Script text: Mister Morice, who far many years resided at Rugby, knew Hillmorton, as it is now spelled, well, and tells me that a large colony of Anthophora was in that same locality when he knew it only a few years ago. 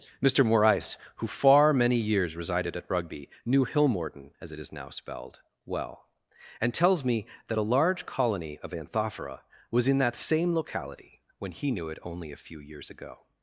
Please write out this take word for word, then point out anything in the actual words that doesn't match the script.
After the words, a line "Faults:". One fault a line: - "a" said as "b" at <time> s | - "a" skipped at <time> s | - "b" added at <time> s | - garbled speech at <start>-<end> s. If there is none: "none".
Mister Morice, who far many years resided at Rugby, knew Hillmorton, as it is now spelled, well, and tells me that a large colony of Anthophora was in that same locality when he knew it only a few years ago.
Faults:
none